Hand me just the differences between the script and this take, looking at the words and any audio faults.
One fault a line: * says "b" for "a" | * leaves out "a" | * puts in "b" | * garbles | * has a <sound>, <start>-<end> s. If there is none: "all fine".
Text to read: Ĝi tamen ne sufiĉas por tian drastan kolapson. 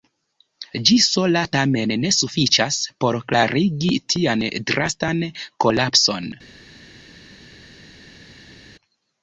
* puts in "sola"
* puts in "klarigi"